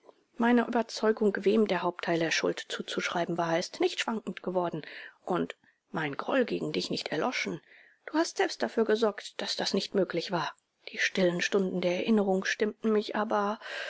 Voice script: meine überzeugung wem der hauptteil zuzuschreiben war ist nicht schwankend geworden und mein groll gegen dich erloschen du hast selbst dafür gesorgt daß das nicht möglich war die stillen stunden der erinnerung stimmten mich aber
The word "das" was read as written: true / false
true